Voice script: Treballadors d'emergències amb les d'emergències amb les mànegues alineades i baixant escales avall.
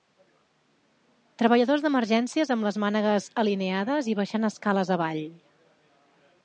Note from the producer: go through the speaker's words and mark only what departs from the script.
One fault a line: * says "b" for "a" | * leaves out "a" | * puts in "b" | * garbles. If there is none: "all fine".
* leaves out "d'emergències amb les"